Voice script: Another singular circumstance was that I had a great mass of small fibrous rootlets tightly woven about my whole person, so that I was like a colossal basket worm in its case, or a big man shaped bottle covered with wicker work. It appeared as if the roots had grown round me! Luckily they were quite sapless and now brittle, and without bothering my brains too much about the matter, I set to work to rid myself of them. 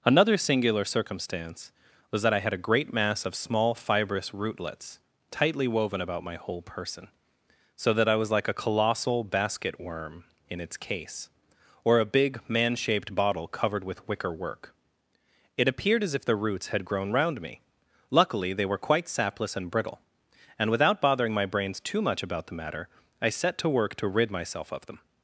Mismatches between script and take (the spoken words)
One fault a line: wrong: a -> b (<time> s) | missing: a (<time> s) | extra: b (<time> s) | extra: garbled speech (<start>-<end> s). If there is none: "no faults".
missing: now (19.7 s)